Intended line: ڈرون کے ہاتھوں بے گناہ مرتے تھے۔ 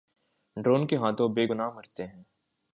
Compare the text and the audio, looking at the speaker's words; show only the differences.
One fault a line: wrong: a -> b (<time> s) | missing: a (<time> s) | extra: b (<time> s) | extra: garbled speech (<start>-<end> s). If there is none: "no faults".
wrong: تھے -> ہیں (2.1 s)